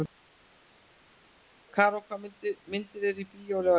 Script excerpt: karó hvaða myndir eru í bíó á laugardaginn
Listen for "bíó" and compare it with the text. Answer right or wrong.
right